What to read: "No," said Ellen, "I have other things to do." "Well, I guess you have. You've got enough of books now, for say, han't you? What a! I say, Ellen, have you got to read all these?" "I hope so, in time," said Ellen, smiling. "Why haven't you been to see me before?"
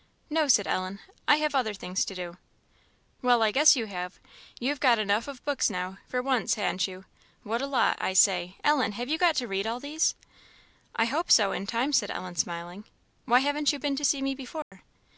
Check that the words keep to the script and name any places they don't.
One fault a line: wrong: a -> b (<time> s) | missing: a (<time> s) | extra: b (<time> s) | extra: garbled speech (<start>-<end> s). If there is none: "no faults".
wrong: say -> once (6.2 s)
extra: lot (7.7 s)